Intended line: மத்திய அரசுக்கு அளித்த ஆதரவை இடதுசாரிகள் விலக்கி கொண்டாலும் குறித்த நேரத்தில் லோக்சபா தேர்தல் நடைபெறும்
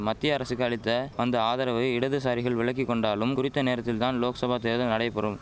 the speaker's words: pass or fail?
fail